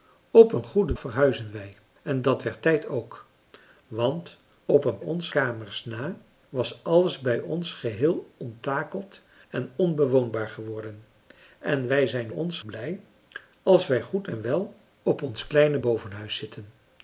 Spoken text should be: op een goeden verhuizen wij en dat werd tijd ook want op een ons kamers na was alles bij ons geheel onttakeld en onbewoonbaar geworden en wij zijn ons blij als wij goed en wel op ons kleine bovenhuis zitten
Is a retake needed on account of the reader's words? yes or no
no